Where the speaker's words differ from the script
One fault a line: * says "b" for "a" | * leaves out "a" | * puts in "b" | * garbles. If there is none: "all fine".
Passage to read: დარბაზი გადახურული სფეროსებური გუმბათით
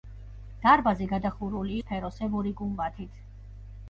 all fine